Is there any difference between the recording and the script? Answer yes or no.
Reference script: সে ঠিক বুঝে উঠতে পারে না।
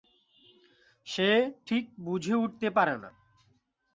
no